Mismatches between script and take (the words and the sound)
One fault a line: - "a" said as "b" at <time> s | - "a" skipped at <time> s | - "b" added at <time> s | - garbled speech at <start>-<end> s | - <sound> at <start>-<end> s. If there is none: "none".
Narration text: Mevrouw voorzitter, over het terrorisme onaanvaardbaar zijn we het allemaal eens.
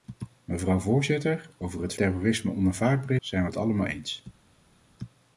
none